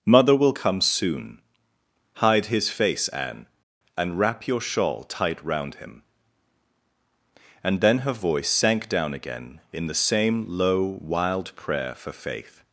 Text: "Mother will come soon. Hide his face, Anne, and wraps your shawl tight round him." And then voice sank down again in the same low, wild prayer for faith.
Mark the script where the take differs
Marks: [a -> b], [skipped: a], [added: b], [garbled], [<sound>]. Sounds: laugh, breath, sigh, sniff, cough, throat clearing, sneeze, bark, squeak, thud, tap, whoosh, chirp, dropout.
"Mother will come soon. Hide his face, Anne, and [wraps -> wrap] your shawl tight round him." And then [added: her] voice sank down again in the same low, wild prayer for faith.